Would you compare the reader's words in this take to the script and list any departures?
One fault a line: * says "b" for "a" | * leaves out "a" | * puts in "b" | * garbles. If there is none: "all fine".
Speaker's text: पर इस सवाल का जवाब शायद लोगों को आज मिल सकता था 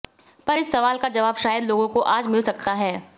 * says "है" for "था"